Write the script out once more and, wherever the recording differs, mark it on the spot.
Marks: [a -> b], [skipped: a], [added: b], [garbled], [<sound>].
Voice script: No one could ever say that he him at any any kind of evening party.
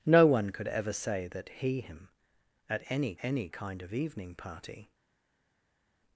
No one could ever say that he him at any any kind of evening party.